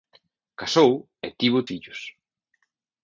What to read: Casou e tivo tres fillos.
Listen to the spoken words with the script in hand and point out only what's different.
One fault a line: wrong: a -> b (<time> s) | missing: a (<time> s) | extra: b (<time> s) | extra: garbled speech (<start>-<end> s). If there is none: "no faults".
missing: tres (1.6 s)